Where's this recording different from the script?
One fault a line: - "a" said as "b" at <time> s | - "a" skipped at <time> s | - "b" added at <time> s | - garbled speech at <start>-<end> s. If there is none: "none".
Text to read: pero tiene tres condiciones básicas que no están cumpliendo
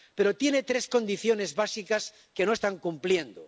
none